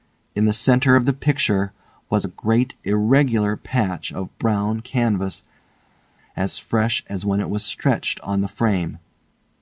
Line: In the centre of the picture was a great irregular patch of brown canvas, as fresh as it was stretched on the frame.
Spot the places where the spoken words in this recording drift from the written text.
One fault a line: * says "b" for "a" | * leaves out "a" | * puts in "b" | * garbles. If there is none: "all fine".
* puts in "when"